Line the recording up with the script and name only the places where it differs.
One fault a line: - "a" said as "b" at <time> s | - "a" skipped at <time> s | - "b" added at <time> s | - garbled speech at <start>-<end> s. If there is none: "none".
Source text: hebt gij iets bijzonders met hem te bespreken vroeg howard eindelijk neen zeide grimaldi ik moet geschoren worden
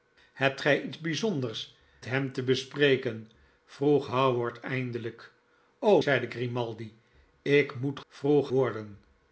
- "met" skipped at 1.8 s
- "neen" skipped at 5.3 s
- "geschoren" said as "vroeg" at 8.1 s